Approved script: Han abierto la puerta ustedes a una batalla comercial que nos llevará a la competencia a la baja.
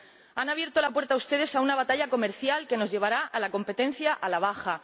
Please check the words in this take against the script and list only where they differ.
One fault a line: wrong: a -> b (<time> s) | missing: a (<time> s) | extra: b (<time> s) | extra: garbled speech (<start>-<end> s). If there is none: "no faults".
no faults